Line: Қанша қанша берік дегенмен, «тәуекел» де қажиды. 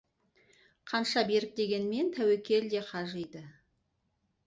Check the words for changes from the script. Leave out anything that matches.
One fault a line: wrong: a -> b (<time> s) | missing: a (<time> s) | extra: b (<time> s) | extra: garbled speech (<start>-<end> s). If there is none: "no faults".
missing: қанша (1.2 s)